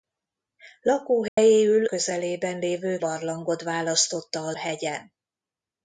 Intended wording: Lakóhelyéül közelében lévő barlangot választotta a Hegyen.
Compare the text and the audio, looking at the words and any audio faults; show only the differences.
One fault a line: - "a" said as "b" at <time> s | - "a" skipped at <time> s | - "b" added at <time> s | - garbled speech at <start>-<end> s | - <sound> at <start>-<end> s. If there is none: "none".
- dropout at 1.3-1.4 s